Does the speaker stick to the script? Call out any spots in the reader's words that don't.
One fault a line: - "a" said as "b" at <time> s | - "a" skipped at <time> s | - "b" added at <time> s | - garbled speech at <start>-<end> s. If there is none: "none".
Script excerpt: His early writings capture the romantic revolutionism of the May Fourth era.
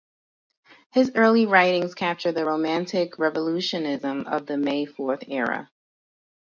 none